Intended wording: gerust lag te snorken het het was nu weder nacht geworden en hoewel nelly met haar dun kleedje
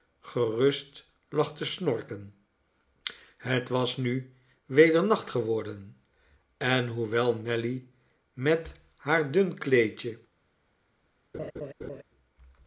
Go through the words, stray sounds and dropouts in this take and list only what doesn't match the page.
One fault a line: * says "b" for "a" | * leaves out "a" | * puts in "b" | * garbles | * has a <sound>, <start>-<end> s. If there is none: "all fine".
* leaves out "het"
* has a laugh, 11.3-12.0 s